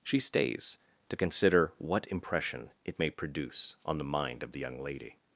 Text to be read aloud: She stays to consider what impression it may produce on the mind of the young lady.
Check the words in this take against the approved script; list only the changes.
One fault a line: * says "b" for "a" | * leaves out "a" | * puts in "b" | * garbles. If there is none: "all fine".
all fine